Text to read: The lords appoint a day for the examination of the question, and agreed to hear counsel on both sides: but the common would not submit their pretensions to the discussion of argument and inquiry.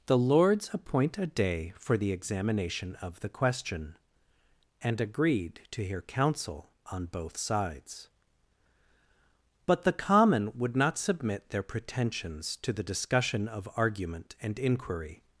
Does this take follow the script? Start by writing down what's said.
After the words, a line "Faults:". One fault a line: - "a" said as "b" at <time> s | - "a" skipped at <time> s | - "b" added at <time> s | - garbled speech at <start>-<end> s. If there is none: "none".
The lords appoint a day for the examination of the question, and agreed to hear counsel on both sides: but the common would not submit their pretensions to the discussion of argument and inquiry.
Faults:
none